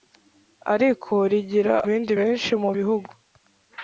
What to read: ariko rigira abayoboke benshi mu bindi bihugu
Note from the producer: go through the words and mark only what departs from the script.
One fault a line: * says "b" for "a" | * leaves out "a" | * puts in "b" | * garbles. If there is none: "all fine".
* says "bindi" for "abayoboke"
* leaves out "bindi"